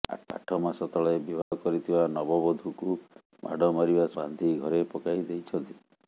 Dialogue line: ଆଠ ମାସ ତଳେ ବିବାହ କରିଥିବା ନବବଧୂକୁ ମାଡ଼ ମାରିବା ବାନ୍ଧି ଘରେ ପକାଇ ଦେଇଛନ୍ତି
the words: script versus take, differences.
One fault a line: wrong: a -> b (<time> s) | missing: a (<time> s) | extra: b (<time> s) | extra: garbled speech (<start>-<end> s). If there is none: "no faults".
no faults